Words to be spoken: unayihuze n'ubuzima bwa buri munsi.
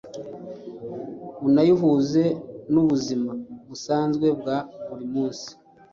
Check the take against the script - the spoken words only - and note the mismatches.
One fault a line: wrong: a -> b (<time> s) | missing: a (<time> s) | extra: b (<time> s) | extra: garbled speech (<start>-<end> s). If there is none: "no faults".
extra: busanzwe (3.7 s)